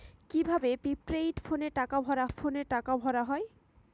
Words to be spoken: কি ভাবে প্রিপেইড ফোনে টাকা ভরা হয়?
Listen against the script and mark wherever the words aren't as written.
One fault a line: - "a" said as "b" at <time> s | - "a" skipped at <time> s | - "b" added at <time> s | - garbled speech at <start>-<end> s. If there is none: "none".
- "ফোনে টাকা ভরা" added at 2.3 s